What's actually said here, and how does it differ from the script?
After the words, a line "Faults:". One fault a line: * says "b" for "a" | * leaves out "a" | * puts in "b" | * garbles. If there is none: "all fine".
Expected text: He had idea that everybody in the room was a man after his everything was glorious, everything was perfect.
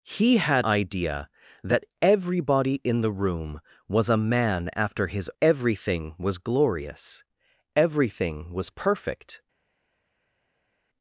He had idea that everybody in the room was a man after his everything was glorious, everything was perfect.
Faults:
all fine